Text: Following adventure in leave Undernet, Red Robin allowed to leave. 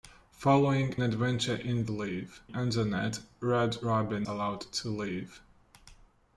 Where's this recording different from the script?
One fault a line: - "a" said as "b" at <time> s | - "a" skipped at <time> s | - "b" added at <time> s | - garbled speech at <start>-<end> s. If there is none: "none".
none